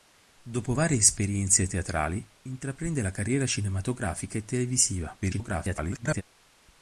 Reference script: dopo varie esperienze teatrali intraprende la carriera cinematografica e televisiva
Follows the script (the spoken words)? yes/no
no